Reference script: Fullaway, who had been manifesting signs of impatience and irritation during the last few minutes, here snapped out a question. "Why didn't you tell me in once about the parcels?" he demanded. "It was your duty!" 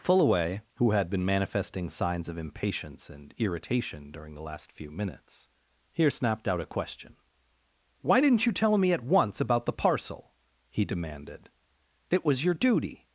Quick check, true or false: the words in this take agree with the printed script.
false